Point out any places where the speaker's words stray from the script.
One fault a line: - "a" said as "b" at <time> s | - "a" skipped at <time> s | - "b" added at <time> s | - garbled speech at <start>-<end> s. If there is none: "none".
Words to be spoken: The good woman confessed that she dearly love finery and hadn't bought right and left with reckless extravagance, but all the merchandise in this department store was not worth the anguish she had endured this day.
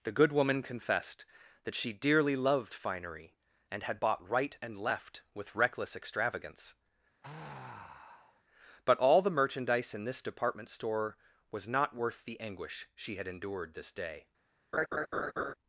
- "love" said as "loved" at 2.4 s
- "hadn't" said as "had" at 3.8 s